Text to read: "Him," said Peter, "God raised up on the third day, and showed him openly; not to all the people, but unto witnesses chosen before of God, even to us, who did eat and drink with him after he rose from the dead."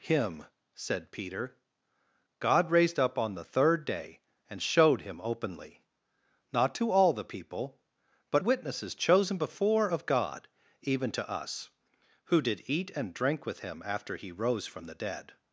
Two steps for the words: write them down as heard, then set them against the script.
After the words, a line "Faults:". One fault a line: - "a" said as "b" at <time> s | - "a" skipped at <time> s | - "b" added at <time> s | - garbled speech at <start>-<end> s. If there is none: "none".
"Him," said Peter, "God raised up on the third day, and showed him openly; not to all the people, but witnesses chosen before of God, even to us, who did eat and drink with him after he rose from the dead."
Faults:
- "unto" skipped at 8.4 s